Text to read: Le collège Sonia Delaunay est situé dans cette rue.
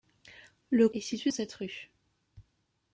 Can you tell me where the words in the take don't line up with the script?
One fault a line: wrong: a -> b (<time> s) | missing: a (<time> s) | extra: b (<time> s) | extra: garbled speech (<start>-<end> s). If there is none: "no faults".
missing: collège Sonia Delaunay (0.9 s)
missing: dans (1.3 s)